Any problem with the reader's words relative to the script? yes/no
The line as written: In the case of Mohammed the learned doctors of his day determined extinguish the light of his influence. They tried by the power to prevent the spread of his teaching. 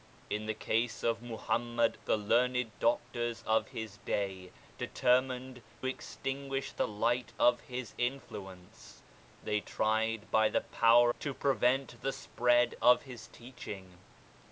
no